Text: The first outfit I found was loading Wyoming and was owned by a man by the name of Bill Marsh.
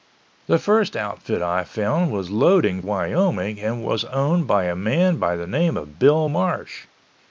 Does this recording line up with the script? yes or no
yes